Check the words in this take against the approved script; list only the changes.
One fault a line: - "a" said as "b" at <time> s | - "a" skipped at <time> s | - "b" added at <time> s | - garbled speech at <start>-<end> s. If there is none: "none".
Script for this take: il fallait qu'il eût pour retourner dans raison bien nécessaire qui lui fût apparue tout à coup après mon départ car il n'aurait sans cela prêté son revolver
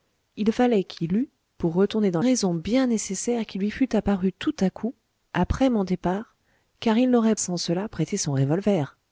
none